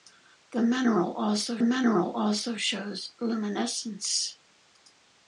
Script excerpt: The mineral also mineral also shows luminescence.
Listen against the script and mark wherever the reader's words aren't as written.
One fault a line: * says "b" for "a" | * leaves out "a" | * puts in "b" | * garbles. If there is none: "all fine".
all fine